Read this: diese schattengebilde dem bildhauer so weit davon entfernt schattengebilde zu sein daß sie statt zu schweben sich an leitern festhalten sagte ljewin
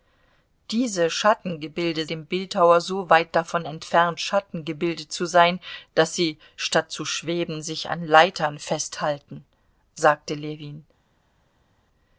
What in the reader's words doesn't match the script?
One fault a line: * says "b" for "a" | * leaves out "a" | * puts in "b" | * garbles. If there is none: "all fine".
all fine